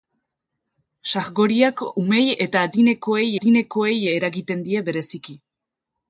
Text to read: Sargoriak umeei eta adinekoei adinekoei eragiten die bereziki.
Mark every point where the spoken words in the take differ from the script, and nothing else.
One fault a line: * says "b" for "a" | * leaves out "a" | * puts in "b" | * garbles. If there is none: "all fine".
all fine